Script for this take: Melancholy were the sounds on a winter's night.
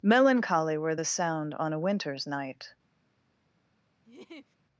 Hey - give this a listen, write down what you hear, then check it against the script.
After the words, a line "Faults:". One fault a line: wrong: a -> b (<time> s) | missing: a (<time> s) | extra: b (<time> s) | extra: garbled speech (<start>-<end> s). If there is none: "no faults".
Melancholy were the sound on a winter's night.
Faults:
wrong: sounds -> sound (1.0 s)